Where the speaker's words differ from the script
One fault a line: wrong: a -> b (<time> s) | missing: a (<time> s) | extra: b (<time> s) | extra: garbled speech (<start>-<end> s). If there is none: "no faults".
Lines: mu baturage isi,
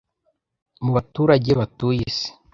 extra: batuye (1.6 s)